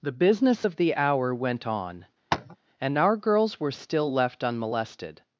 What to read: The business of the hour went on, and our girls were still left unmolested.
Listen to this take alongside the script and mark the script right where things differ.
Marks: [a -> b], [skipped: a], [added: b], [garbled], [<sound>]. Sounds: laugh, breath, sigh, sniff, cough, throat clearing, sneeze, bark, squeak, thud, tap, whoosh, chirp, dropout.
The business of the hour went on, [tap] and our girls were still left unmolested.